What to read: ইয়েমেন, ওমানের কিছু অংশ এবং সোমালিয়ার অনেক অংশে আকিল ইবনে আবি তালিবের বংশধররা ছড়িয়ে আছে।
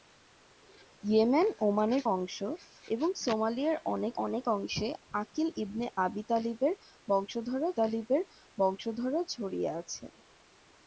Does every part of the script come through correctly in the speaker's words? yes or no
no